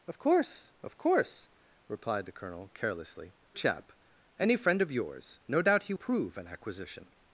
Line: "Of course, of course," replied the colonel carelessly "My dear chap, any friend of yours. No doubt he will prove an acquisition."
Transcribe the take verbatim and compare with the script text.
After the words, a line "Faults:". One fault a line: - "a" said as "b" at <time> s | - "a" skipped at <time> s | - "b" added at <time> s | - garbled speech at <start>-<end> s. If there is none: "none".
"Of course, of course," replied the colonel carelessly "Chap, any friend of yours. No doubt he prove an acquisition."
Faults:
- "My dear" skipped at 3.4 s
- "will" skipped at 5.9 s